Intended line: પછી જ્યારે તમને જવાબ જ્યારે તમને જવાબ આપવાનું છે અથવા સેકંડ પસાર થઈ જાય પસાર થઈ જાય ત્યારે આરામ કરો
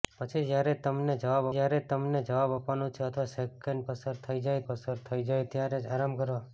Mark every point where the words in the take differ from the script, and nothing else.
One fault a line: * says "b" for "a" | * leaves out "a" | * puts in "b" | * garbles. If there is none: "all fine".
all fine